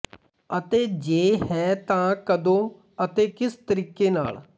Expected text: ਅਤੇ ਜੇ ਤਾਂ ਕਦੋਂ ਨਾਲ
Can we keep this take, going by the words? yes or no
no